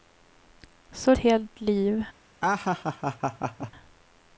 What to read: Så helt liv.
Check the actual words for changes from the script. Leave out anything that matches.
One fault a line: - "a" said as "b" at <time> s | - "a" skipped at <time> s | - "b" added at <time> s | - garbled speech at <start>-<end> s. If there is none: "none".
none